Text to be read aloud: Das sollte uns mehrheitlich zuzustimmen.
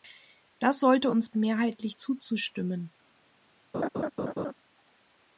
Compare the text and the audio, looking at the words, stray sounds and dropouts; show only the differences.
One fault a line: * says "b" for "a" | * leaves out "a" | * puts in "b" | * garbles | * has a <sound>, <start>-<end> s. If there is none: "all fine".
* has a laugh, 3.7-4.5 s